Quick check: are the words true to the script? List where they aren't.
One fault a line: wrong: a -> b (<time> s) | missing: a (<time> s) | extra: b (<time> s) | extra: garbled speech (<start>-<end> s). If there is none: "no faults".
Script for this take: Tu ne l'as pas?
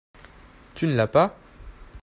no faults